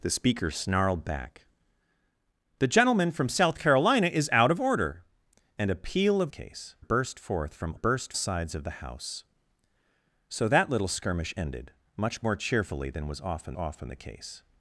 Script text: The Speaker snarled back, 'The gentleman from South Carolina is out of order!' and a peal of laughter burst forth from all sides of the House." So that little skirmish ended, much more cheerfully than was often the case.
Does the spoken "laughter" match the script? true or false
false